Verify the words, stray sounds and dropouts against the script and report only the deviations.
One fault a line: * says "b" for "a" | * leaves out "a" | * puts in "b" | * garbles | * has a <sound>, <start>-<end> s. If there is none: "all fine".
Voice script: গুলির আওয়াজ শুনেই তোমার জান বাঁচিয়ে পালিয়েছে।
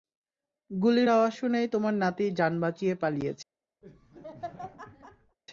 * puts in "নাতি"
* has a laugh, 3.8-5.4 s